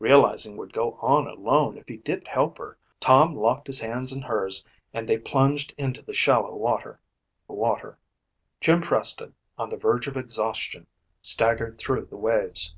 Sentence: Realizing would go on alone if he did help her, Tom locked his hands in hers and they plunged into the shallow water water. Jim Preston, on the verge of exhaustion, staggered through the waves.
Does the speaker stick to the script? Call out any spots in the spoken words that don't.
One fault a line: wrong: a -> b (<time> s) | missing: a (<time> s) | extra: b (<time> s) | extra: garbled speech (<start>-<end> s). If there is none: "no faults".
no faults